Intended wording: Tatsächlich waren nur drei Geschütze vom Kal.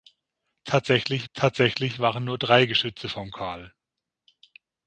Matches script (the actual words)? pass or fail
fail